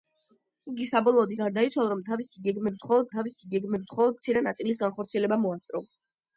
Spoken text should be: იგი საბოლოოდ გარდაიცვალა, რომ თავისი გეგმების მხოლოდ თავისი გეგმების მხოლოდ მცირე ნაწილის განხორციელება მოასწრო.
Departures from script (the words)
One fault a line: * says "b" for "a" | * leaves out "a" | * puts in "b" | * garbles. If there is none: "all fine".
all fine